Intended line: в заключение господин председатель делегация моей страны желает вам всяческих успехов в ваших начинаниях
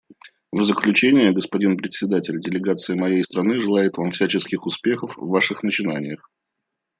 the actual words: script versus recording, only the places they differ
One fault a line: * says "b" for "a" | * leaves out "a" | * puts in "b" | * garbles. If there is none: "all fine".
all fine